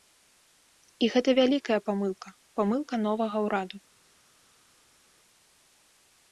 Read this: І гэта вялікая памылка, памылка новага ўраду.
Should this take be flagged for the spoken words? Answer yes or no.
no